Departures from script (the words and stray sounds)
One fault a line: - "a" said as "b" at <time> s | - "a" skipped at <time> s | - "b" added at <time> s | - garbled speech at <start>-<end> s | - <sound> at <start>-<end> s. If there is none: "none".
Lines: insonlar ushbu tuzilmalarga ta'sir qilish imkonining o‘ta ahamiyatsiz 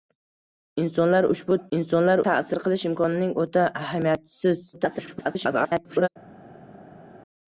- "tuzilmalarga" said as "insonlar" at 1.8 s
- garbled speech at 4.7-6.1 s